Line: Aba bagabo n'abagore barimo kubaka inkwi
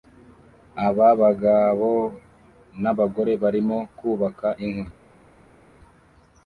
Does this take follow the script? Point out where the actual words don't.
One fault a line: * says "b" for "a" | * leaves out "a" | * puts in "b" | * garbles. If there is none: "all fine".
all fine